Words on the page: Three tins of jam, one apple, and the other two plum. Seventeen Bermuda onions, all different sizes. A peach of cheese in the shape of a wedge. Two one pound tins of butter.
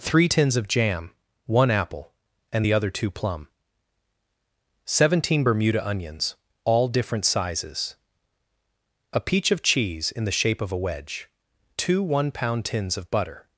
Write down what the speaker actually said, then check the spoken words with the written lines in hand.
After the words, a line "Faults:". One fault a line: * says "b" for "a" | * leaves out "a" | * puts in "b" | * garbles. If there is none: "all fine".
Three tins of jam, one apple, and the other two plum. Seventeen Bermuda onions, all different sizes. A peach of cheese in the shape of a wedge. Two one pound tins of butter.
Faults:
all fine